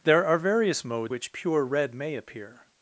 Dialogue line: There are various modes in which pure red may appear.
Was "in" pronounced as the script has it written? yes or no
no